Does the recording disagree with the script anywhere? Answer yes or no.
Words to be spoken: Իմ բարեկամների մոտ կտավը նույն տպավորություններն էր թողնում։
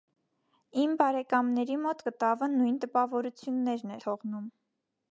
yes